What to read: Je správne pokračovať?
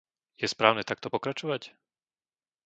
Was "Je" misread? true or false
false